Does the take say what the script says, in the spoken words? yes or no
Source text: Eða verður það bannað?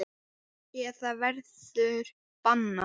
no